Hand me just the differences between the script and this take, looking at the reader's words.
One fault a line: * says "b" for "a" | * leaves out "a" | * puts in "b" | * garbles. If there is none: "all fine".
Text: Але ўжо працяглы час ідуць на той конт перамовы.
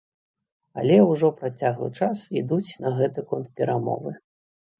* says "гэты" for "той"